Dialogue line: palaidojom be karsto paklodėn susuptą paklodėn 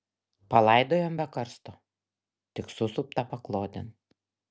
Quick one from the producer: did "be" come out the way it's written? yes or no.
yes